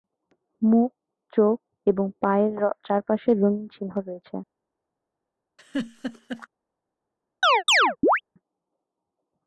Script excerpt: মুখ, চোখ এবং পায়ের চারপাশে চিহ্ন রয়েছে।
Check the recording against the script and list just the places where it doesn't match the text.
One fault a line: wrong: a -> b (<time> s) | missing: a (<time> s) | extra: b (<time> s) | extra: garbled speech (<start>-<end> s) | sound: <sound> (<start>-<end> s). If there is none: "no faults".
extra: রঙিন (3.3 s)
sound: laugh (5.6-6.5 s)
sound: chirp (7.4-8.2 s)